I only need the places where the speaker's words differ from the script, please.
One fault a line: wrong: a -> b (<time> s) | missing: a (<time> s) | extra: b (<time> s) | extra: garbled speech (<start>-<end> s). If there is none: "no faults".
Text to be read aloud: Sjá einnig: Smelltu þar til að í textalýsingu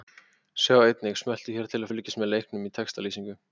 wrong: þar -> hér (1.6 s)
extra: fylgjast með leiknum (1.9 s)